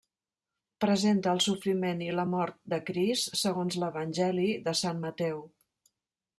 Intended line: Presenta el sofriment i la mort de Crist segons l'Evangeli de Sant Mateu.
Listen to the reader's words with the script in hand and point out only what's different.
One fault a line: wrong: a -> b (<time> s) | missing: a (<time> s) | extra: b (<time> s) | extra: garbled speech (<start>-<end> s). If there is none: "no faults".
no faults